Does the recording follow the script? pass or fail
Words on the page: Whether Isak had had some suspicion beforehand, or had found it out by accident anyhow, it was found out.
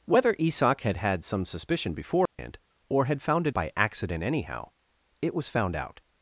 fail